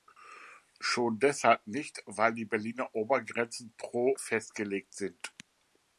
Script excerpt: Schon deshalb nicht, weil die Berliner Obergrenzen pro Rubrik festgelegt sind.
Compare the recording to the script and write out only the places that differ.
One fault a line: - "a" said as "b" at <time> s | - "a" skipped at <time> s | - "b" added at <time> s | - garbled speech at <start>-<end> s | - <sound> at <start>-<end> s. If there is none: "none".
- "Rubrik" skipped at 4.1 s